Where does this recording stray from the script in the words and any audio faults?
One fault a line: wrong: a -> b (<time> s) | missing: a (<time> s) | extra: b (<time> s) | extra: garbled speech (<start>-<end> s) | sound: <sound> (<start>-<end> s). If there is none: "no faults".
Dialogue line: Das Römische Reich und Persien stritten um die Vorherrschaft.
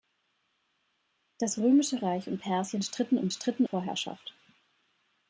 wrong: die -> stritten (3.3 s)